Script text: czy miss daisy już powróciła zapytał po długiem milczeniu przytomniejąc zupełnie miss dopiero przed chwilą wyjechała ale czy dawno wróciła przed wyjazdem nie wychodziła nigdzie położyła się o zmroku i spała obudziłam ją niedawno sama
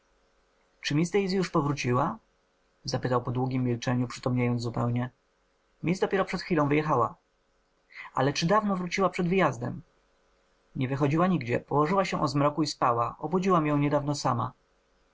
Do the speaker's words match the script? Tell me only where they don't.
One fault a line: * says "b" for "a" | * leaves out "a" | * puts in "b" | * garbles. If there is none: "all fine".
all fine